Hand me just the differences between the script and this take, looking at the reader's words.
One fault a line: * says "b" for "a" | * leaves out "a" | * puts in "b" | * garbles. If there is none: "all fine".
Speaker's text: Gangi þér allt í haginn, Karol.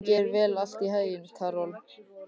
all fine